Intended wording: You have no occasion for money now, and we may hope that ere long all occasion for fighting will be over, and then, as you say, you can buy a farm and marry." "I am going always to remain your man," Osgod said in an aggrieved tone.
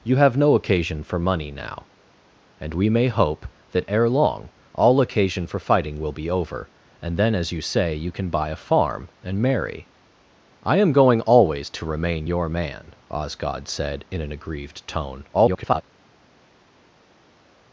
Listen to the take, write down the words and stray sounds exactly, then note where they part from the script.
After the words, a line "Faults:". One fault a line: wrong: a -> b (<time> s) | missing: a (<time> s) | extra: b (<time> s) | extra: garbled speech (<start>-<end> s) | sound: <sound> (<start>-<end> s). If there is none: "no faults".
You have no occasion for money now, and we may hope that ere long all occasion for fighting will be over, and then, as you say, you can buy a farm and marry." "I am going always to remain your man," Osgod said in an aggrieved tone. [garbled]
Faults:
extra: garbled speech (15.3-15.8 s)